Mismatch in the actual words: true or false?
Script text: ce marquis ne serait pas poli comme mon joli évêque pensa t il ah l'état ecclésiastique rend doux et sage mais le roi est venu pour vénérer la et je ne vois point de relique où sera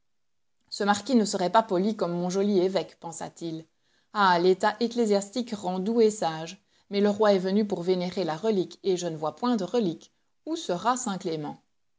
true